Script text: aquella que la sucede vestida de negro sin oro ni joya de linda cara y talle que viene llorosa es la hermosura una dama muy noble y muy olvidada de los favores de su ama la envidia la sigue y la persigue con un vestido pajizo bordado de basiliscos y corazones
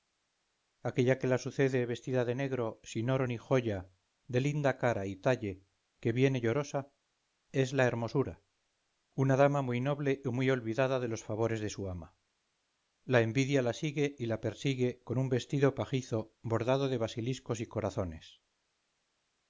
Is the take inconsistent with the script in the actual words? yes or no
no